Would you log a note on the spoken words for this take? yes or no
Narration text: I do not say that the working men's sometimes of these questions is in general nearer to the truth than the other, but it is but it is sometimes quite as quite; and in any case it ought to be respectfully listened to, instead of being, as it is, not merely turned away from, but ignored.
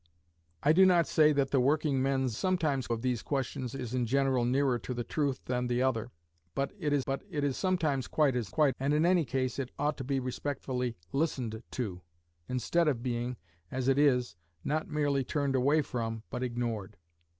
no